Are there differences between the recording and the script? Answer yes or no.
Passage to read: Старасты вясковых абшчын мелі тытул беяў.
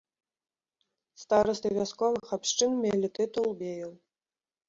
no